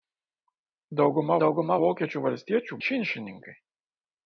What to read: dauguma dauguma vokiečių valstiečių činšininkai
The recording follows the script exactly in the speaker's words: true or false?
true